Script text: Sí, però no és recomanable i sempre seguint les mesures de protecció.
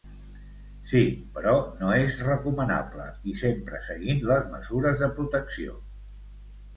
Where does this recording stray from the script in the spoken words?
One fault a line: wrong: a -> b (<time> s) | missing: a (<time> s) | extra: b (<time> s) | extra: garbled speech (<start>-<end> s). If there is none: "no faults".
no faults